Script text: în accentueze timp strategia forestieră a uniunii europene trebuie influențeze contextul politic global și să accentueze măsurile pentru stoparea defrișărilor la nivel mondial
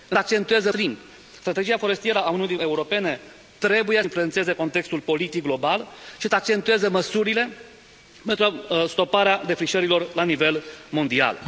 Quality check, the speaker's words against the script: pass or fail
pass